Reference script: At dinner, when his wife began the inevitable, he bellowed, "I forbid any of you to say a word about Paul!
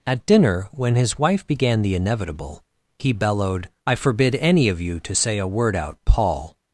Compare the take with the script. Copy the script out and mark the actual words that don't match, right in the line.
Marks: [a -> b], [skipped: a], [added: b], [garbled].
At dinner, when his wife began the inevitable, he bellowed, "I forbid any of you to say a word [about -> out] Paul!